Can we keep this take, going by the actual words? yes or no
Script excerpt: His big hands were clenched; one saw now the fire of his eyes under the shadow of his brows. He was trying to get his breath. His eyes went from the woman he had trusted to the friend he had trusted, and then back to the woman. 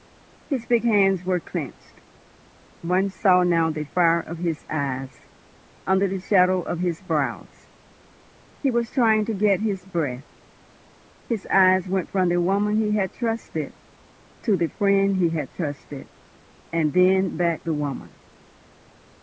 no